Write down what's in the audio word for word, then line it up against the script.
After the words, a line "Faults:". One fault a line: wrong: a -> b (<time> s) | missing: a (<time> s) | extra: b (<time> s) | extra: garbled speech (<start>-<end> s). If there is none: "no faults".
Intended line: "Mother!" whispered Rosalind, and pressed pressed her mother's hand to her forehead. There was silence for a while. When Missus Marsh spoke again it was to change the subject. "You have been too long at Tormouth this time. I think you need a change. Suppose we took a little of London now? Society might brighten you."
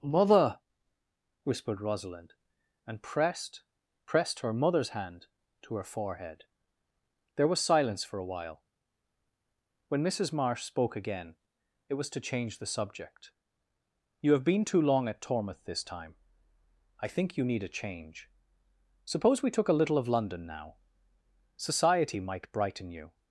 "Mother!" whispered Rosalind, and pressed pressed her mother's hand to her forehead. There was silence for a while. When Missus Marsh spoke again it was to change the subject. "You have been too long at Tormouth this time. I think you need a change. Suppose we took a little of London now? Society might brighten you."
Faults:
no faults